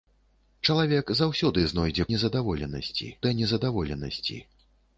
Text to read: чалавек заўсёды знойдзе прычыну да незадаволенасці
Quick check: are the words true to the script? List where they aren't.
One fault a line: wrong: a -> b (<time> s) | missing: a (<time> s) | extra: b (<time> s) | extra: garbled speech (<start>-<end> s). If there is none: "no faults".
wrong: прычыну -> незадаволенасці (2.1 s)